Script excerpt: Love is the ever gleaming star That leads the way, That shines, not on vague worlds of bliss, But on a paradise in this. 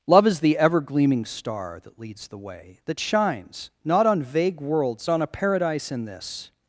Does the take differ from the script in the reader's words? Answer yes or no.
yes